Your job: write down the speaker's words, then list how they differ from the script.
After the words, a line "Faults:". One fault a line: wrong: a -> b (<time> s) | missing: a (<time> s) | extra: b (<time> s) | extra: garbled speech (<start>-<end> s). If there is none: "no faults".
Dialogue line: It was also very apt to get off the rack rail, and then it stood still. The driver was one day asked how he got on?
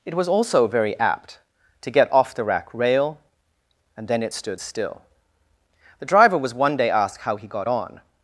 It was also very apt to get off the rack rail, and then it stood still. The driver was one day asked how he got on?
Faults:
no faults